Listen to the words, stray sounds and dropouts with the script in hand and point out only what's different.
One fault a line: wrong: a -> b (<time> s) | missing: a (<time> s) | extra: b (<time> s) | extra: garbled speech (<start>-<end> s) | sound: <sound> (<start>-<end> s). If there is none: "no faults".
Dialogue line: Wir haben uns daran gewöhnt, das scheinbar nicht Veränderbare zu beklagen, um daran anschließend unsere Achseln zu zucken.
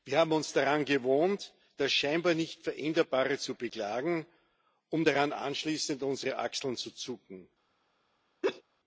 sound: laugh (8.4-8.6 s)